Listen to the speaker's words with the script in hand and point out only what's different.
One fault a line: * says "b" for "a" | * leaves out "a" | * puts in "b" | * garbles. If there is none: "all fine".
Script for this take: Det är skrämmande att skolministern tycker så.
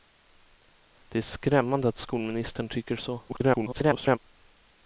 * garbles